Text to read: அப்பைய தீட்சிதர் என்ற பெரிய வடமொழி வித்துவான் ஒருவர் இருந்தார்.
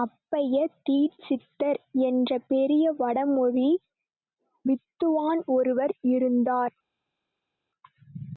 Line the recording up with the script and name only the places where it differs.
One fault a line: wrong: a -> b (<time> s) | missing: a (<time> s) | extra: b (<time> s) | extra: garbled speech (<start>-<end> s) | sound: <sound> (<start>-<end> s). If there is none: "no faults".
no faults